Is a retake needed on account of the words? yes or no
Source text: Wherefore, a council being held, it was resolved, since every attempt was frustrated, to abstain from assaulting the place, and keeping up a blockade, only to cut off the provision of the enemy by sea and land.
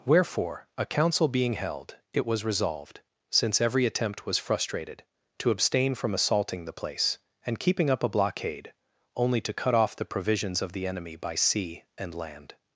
yes